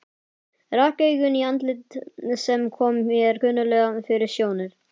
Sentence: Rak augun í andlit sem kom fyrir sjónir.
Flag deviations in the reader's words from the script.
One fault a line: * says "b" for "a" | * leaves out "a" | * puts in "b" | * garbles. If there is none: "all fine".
* puts in "mér kunnuglega"